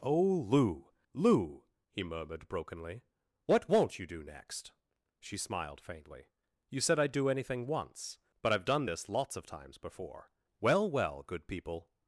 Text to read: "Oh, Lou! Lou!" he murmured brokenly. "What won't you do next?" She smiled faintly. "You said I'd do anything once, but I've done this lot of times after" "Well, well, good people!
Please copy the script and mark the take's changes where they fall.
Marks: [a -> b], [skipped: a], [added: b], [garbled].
"Oh, Lou! Lou!" he murmured brokenly. "What won't you do next?" She smiled faintly. "You said I'd do anything once, but I've done this [lot -> lots] of times [after" -> before] "Well, well, good people!